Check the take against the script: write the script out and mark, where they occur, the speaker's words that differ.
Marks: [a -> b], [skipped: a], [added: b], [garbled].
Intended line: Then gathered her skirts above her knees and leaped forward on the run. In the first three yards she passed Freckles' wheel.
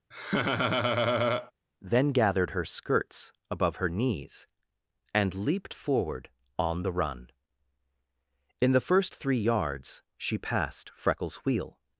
Then gathered her skirts above her knees and leaped forward on the run. In the first three yards she passed Freckles' wheel.